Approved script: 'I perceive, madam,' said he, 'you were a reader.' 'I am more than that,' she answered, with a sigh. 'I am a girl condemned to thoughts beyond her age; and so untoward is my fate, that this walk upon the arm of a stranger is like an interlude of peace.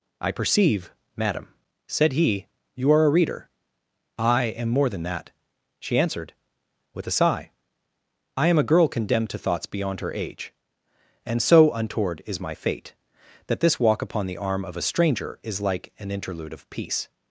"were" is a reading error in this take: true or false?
true